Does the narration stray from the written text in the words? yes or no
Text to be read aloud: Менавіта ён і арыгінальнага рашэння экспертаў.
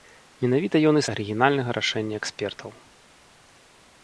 no